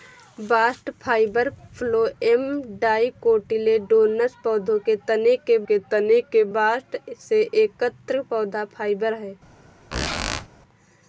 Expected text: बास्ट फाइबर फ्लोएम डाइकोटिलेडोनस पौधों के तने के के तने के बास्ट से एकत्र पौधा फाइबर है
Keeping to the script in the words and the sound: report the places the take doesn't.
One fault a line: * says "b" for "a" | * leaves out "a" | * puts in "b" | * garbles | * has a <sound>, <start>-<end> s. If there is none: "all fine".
* has a squeak, 9.9-10.5 s